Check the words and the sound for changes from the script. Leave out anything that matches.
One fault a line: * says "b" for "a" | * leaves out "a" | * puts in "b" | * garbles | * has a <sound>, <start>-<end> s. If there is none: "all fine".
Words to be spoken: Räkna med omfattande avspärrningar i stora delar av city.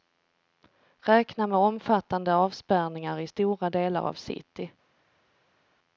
all fine